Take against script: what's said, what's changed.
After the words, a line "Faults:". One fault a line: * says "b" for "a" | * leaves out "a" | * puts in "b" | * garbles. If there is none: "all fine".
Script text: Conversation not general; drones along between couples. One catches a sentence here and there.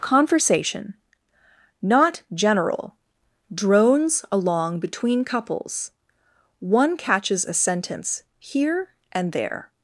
Conversation not general; drones along between couples. One catches a sentence here and there.
Faults:
all fine